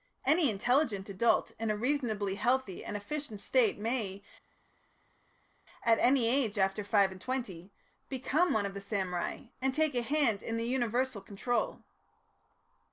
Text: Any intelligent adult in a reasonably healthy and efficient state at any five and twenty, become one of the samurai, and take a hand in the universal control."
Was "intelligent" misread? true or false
false